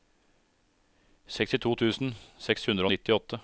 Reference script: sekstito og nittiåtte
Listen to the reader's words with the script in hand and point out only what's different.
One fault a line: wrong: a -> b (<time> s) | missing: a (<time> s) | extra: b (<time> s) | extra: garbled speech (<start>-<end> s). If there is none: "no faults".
extra: tusen seks hundre (1.7 s)